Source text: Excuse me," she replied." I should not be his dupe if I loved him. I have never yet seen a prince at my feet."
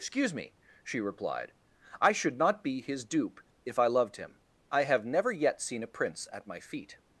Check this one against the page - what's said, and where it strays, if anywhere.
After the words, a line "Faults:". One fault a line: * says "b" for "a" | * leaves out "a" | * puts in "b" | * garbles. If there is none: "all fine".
Excuse me," she replied." I should not be his dupe if I loved him. I have never yet seen a prince at my feet."
Faults:
all fine